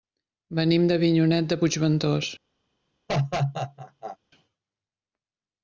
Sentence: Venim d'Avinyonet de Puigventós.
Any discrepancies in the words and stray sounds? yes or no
yes